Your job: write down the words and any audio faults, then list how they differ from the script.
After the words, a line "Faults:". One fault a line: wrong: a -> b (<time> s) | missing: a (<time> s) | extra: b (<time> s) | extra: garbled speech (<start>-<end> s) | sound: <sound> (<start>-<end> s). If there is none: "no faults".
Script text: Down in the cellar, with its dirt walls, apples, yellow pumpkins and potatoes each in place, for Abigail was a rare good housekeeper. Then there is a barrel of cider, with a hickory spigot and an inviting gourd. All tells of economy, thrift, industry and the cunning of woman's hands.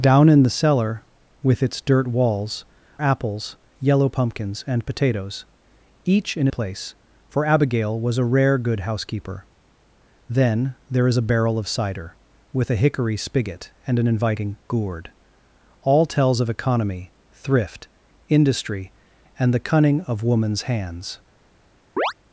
Down in the cellar, with its dirt walls, apples, yellow pumpkins and potatoes each in place, for Abigail was a rare good housekeeper. Then there is a barrel of cider, with a hickory spigot and an inviting gourd. All tells of economy, thrift, industry and the cunning of woman's hands.
Faults:
sound: chirp (22.0-22.1 s)